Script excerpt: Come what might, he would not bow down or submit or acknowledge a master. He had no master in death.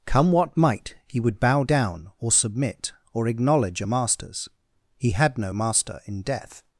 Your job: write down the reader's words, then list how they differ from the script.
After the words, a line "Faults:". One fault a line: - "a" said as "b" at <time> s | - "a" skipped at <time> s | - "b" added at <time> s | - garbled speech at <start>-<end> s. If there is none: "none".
Come what might, he would bow down or submit or acknowledge a masters. He had no master in death.
Faults:
- "not" skipped at 1.4 s
- "master" said as "masters" at 3.8 s